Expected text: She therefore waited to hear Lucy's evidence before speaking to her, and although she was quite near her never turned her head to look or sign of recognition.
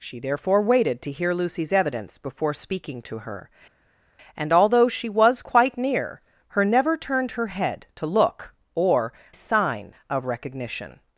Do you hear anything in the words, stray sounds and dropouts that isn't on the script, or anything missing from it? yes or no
no